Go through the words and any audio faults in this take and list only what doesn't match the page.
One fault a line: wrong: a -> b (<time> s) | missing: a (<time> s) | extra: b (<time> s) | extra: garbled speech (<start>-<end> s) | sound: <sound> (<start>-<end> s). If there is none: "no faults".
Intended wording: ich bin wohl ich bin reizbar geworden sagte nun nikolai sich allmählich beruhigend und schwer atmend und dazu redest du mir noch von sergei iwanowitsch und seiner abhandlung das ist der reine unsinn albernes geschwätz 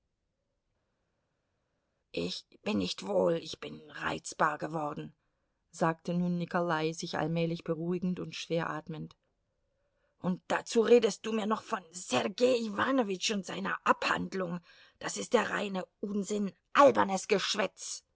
extra: nicht (2.8 s)